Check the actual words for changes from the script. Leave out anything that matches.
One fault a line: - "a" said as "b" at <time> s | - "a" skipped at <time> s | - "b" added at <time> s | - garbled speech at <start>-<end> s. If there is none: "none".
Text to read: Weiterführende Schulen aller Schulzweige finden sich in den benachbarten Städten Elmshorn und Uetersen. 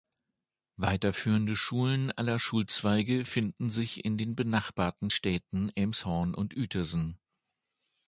none